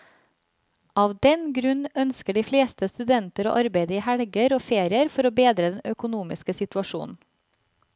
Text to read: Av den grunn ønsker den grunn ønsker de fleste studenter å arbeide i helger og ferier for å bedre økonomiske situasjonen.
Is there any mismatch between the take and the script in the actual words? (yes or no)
yes